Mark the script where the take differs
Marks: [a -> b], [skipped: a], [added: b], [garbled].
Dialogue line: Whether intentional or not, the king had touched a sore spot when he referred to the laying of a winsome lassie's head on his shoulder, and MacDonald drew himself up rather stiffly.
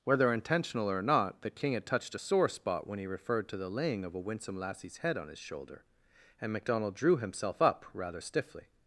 Whether intentional or not, the king had touched a sore spot when he referred to the laying of a winsome lassie's head on his shoulder, and MacDonald drew himself up rather stiffly.